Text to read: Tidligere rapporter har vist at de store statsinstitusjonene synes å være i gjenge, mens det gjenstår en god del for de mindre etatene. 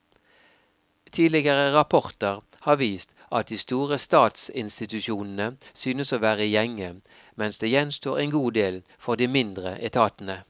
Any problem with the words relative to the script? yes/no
no